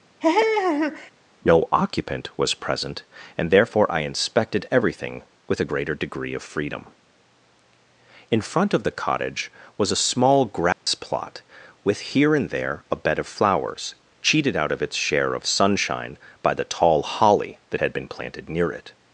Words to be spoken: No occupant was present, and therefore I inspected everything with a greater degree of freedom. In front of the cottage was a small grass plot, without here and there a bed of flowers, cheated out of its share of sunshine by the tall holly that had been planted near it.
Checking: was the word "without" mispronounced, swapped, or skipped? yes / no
yes